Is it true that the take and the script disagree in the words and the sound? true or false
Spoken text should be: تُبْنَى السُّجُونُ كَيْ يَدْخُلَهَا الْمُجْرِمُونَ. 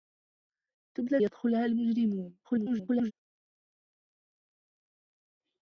true